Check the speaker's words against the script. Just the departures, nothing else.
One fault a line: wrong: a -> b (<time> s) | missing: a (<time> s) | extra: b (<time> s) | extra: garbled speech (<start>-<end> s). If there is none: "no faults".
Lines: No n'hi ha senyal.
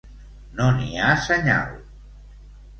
no faults